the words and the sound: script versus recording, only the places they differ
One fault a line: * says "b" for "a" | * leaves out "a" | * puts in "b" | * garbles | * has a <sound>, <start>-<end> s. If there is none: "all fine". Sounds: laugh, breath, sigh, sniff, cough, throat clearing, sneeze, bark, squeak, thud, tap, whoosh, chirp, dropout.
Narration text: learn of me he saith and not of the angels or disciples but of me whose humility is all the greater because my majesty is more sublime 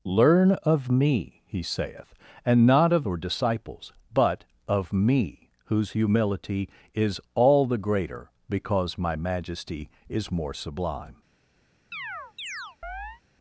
* leaves out "the angels"
* has a chirp, 11.9-13.2 s